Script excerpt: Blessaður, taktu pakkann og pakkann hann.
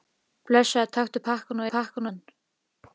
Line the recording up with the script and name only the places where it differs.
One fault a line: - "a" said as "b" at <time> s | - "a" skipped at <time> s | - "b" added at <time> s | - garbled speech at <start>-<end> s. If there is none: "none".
none